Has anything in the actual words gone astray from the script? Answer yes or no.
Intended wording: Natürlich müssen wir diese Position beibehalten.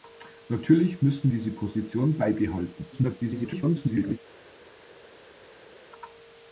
yes